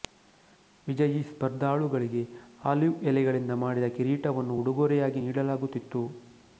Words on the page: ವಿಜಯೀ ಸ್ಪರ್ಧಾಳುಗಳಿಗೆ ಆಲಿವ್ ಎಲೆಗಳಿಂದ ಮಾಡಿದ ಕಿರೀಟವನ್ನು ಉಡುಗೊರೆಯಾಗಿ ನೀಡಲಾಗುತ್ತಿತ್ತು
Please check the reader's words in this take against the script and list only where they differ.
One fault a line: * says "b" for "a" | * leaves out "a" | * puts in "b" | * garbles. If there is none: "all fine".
all fine